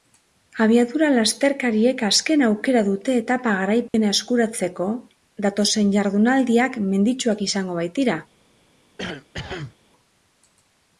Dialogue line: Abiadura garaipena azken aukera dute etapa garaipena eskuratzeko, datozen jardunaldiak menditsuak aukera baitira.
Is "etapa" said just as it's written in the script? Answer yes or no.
yes